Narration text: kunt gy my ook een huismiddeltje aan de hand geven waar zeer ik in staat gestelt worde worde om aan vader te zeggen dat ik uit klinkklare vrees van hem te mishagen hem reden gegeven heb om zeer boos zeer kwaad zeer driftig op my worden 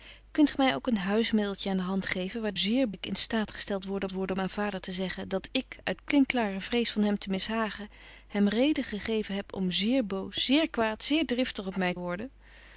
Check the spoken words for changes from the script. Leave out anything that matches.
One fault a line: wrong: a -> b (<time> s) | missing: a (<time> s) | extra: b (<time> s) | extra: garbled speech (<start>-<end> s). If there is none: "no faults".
no faults